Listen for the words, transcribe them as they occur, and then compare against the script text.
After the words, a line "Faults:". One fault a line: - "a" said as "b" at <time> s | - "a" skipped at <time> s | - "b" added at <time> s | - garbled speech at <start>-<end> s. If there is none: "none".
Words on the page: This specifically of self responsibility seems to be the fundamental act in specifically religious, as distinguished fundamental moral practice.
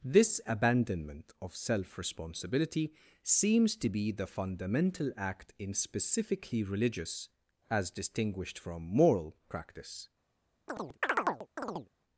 This abandonment of self responsibility seems to be the fundamental act in specifically religious, as distinguished from moral practice.
Faults:
- "specifically" said as "abandonment" at 0.5 s
- "fundamental" said as "from" at 8.6 s